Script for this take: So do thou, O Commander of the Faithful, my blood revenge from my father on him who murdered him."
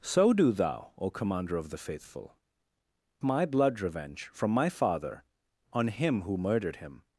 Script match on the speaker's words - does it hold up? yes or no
yes